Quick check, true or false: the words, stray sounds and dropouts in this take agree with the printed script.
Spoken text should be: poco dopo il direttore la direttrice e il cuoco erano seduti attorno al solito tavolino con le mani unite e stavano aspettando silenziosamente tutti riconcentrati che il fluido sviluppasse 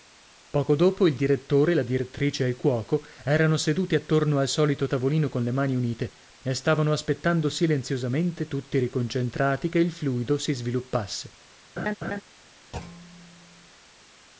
false